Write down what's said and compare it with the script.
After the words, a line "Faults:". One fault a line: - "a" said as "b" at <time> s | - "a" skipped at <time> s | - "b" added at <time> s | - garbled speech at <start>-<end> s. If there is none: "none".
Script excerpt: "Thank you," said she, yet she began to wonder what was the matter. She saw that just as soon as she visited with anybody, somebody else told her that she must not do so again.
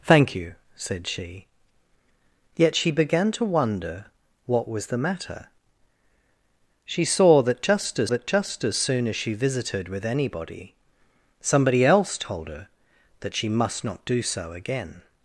"Thank you," said she, yet she began to wonder what was the matter. She saw that just as that just as soon as she visited with anybody, somebody else told her that she must not do so again.
Faults:
- "that just as" added at 8.1 s